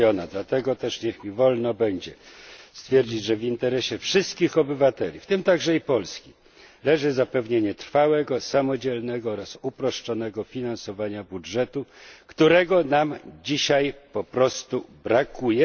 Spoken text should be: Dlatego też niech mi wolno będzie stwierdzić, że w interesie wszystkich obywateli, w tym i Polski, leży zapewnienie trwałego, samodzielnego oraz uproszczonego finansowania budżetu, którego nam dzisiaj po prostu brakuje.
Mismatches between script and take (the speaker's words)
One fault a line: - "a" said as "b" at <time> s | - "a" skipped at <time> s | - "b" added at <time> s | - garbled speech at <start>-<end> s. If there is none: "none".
- "także" added at 5.4 s